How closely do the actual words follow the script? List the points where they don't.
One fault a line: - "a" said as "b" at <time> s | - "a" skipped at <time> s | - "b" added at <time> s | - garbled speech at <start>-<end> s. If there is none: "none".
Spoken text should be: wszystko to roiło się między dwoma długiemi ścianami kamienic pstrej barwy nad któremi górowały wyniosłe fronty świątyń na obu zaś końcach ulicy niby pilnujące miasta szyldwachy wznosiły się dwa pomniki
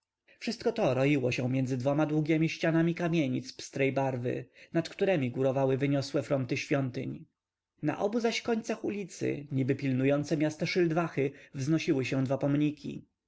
none